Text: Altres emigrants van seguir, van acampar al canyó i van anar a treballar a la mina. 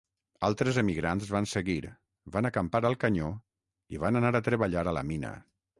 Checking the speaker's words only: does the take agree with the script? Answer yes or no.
yes